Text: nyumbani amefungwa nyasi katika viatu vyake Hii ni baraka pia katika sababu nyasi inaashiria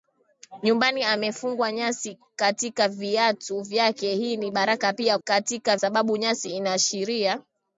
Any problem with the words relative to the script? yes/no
no